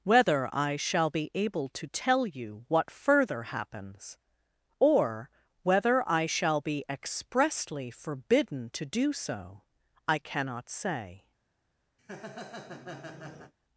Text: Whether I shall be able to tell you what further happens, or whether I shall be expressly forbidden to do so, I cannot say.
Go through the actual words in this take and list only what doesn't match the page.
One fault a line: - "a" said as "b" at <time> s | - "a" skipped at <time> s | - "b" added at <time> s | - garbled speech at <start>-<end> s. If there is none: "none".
none